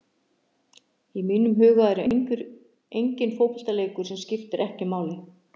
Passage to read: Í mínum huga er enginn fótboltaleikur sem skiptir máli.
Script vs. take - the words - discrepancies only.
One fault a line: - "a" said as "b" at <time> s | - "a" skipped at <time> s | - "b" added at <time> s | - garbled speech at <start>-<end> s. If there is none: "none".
- "ekki" added at 4.7 s